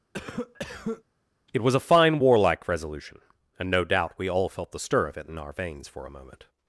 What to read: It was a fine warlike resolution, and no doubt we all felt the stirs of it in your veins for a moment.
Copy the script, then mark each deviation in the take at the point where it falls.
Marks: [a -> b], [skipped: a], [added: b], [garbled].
It was a fine warlike resolution, and no doubt we all felt the [stirs -> stir] of it in [your -> our] veins for a moment.